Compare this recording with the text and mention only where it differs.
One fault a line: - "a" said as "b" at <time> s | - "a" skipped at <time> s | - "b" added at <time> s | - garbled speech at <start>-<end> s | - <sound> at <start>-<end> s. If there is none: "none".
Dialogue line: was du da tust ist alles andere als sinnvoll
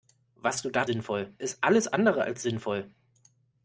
- "tust" said as "sinnvoll" at 0.8 s